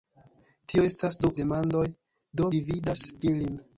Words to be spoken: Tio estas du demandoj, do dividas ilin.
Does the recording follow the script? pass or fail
pass